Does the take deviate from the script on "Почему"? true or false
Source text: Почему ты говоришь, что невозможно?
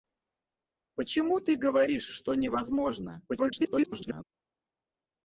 false